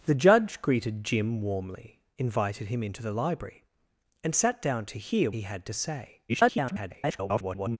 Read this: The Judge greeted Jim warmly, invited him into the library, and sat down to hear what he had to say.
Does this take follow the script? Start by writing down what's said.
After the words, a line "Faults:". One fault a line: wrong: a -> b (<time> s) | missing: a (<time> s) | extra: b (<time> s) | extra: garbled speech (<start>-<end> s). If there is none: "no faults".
The Judge greeted Jim warmly, invited him into the library, and sat down to hear he had to say. [garbled]
Faults:
missing: what (5.3 s)
extra: garbled speech (6.3-7.8 s)